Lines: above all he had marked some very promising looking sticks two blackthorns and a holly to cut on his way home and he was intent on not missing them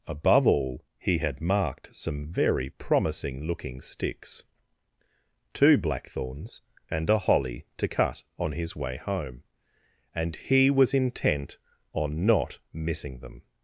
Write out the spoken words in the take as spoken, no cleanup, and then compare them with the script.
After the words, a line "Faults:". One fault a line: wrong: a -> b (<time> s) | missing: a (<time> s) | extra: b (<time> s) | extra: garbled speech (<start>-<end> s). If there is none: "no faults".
above all he had marked some very promising looking sticks two blackthorns and a holly to cut on his way home and he was intent on not missing them
Faults:
no faults